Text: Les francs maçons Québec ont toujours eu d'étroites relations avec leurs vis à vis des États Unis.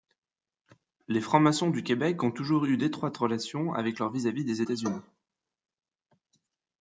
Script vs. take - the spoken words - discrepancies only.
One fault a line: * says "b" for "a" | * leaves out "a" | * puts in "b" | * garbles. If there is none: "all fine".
* puts in "du"